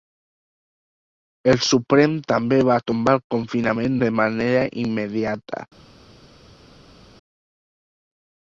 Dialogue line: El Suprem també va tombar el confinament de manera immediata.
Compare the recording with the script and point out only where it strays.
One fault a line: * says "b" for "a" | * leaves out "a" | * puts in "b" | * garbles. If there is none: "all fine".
all fine